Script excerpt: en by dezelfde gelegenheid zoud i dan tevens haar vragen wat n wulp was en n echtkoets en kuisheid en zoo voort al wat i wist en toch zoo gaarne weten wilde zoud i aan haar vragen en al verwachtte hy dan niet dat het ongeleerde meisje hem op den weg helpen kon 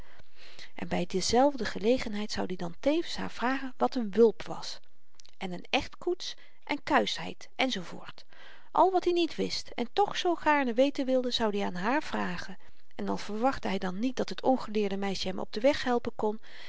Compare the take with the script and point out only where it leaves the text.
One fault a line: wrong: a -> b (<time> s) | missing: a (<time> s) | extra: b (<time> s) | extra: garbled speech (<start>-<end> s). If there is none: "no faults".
extra: niet (9.1 s)